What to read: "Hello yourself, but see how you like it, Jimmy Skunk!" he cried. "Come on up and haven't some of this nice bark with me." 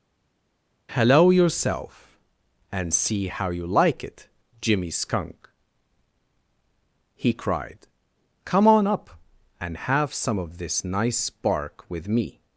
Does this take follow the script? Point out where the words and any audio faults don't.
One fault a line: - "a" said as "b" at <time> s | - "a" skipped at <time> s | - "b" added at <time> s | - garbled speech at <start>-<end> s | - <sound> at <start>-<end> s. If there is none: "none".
- "but" said as "and" at 2.7 s
- "haven't" said as "have" at 9.8 s